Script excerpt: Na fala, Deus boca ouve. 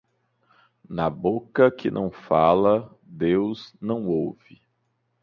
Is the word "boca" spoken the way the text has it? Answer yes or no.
no